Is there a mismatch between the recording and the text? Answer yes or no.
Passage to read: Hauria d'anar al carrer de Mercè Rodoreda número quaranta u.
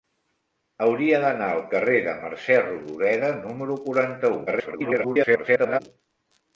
yes